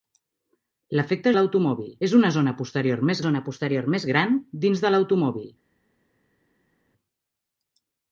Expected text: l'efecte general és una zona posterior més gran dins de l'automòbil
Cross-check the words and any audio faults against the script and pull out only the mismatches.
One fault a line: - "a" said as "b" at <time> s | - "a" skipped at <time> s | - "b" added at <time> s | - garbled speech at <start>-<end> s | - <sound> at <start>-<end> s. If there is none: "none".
- "general" said as "l'automòbil" at 1.4 s
- "zona posterior més" added at 3.3 s